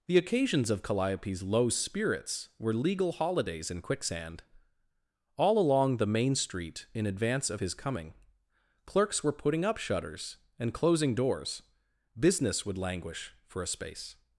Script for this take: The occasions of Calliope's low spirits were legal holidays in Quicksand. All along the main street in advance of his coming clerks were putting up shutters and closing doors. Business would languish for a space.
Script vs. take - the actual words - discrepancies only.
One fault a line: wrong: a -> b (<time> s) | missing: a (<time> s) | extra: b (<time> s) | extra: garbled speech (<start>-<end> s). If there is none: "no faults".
no faults